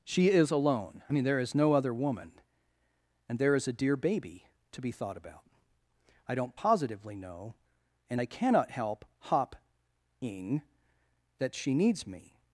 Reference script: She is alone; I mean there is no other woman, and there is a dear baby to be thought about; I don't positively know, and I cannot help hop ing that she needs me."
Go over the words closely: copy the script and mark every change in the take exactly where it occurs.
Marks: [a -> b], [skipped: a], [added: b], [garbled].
She is alone; I mean there is no other woman, and there is a dear baby to be thought about; I don't positively know, and I cannot help hop ing that she needs me."